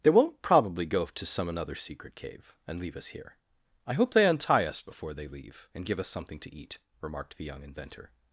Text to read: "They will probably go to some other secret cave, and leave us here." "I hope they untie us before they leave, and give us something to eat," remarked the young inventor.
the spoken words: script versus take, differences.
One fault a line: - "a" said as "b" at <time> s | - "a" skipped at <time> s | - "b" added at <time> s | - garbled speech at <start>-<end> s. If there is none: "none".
- "will" said as "won't" at 0.1 s
- "other" said as "another" at 1.5 s